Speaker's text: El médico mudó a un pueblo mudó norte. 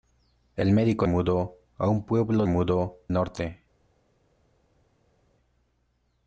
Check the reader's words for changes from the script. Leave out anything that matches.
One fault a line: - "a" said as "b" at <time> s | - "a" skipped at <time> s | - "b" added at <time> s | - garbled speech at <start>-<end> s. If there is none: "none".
none